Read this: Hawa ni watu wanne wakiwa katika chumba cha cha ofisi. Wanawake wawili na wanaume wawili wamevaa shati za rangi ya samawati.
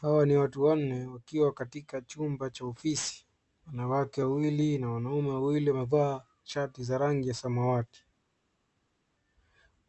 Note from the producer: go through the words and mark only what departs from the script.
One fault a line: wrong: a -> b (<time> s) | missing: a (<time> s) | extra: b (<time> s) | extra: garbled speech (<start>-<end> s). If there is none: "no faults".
missing: cha (2.6 s)